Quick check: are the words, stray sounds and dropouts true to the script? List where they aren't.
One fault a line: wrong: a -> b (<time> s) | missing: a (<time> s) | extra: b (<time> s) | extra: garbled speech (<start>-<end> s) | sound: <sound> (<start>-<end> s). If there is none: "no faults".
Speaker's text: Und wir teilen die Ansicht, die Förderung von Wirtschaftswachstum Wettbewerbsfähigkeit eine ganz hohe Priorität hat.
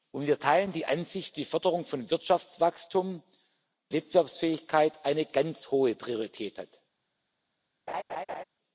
sound: laugh (7.9-8.4 s)